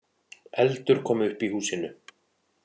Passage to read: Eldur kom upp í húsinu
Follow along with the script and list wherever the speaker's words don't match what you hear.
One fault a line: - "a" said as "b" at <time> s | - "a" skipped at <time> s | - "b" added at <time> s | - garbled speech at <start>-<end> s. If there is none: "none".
none